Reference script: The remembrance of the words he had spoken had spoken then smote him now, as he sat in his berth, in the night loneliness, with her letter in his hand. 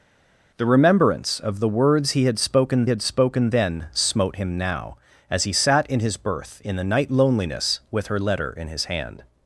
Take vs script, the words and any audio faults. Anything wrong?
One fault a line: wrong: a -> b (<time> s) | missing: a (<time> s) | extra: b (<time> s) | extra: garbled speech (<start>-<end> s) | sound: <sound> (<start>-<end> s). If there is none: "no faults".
no faults